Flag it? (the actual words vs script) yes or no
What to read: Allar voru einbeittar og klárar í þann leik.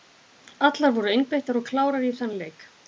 no